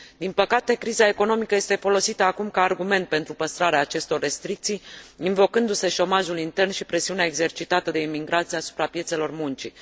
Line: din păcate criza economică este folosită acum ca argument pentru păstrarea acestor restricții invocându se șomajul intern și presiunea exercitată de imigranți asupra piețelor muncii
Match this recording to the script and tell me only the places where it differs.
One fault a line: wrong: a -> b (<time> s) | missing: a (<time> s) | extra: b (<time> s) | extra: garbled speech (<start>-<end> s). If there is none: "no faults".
no faults